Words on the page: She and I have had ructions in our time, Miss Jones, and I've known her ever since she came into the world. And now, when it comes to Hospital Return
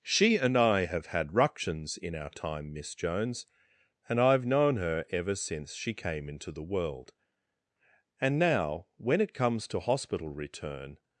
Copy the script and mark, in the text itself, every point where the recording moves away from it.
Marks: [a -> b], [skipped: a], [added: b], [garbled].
She and I have had ructions in our time, Miss Jones, and I've known her ever since she came into the world. And now, when it comes to Hospital Return